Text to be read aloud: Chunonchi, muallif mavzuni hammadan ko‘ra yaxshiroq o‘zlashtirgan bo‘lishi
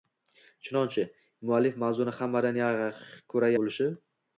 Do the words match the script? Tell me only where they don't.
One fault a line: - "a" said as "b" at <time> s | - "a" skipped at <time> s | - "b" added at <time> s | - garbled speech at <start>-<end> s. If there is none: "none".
- "yaxshiroq o‘zlashtirgan" skipped at 3.5 s